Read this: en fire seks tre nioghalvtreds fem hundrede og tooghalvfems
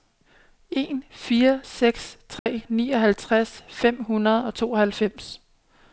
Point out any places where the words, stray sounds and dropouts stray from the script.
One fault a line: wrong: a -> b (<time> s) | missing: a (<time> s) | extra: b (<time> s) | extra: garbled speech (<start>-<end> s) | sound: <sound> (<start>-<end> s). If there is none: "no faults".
sound: dropout (2.4-2.5 s)